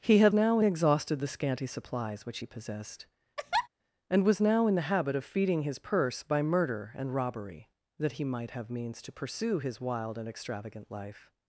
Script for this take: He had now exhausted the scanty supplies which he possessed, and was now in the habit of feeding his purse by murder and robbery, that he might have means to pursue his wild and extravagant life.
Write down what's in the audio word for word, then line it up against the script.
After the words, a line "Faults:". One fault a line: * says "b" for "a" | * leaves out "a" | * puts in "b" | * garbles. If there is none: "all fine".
He had now exhausted the scanty supplies which he possessed, and was now in the habit of feeding his purse by murder and robbery, that he might have means to pursue his wild and extravagant life.
Faults:
all fine